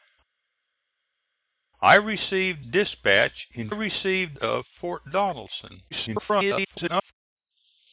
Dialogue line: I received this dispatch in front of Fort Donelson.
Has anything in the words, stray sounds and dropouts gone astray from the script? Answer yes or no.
yes